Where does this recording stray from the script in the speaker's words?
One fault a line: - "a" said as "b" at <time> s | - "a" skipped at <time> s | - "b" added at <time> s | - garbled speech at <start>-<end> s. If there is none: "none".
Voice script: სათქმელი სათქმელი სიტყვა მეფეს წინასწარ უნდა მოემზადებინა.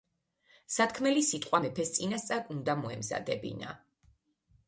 - "სათქმელი" skipped at 1.2 s